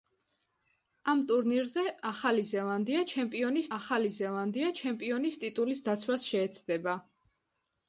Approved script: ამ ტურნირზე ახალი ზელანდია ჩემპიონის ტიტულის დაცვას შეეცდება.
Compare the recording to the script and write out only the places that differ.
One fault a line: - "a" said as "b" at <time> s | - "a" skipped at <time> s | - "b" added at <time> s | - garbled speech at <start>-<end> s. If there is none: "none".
- "ახალი ზელანდია ჩემპიონის" added at 3.8 s